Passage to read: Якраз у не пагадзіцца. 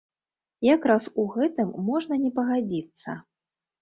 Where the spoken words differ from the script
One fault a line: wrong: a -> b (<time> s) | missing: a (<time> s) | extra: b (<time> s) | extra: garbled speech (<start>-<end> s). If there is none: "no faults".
extra: гэтым можна (1.4 s)